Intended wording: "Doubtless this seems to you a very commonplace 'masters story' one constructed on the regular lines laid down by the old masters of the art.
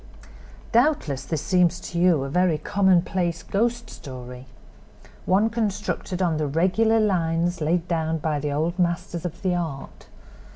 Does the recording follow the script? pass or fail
fail